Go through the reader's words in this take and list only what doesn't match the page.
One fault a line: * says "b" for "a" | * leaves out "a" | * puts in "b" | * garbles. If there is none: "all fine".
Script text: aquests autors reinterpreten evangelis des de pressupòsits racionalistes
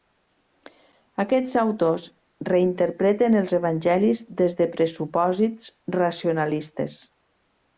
* puts in "els"